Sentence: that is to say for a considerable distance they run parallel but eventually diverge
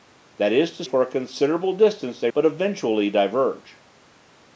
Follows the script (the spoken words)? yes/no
no